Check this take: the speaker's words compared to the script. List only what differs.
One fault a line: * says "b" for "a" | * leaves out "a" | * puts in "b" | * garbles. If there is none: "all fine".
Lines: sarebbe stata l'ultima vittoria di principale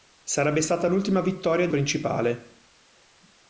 all fine